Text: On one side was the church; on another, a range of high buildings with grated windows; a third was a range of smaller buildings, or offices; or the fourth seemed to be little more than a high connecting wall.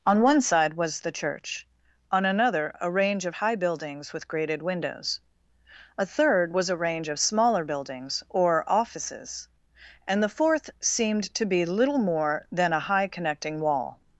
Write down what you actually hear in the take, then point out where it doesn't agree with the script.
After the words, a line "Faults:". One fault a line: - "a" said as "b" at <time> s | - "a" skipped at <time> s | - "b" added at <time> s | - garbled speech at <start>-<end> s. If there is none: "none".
On one side was the church; on another, a range of high buildings with grated windows; a third was a range of smaller buildings, or offices; and the fourth seemed to be little more than a high connecting wall.
Faults:
- "or" said as "and" at 10.1 s